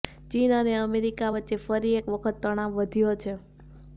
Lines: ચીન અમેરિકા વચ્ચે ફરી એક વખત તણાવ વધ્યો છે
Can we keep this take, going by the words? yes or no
no